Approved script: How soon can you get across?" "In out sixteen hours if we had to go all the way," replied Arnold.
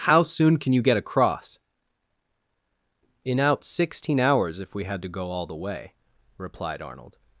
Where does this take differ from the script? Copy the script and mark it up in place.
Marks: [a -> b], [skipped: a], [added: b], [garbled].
How soon can you get across?" "In out sixteen hours if we had to go all the way," replied Arnold.